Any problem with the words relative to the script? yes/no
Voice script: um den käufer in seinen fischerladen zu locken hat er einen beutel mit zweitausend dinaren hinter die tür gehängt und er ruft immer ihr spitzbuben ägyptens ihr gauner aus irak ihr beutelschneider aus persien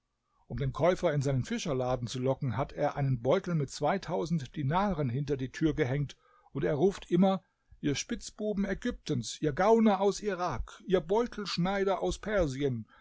no